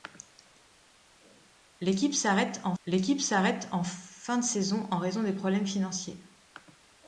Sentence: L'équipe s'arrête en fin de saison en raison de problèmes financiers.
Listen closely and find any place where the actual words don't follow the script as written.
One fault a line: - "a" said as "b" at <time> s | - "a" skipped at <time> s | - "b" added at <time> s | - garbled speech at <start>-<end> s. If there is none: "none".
- "l'équipe s'arrête en" added at 2.8 s